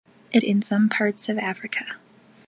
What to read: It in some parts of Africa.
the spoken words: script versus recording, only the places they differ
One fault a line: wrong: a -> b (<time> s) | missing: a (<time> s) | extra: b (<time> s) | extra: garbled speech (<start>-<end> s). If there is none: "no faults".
no faults